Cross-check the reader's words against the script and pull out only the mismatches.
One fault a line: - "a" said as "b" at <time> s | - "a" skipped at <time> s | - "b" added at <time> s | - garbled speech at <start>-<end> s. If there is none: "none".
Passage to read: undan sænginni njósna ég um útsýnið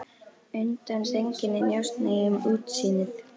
none